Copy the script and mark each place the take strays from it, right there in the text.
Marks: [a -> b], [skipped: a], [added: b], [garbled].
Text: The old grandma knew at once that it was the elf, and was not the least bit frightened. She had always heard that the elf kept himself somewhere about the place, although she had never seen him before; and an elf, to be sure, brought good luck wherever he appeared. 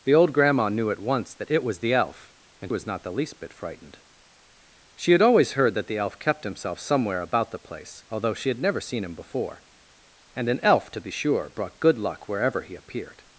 The old grandma knew at once that it was the elf, and was not the least bit frightened. She had always heard that the elf kept himself somewhere about the place, although she had never seen him before; and an elf, to be sure, brought good luck wherever he appeared.